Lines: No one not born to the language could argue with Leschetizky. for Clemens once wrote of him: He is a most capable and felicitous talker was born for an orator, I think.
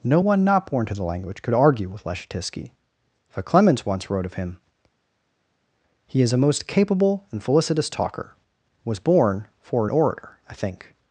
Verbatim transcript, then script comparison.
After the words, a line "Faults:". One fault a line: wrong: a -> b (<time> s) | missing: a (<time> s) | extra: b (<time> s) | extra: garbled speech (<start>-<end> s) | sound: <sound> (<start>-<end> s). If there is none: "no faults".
No one not born to the language could argue with Leschetizky. for Clemens once wrote of him: He is a most capable and felicitous talker was born for an orator, I think.
Faults:
no faults